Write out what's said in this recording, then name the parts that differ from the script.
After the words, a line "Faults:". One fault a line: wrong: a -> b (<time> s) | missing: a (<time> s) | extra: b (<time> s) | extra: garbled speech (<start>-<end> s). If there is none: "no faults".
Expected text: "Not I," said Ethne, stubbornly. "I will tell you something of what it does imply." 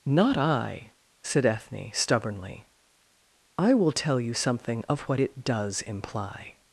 "Not I," said Ethne, stubbornly. "I will tell you something of what it does imply."
Faults:
no faults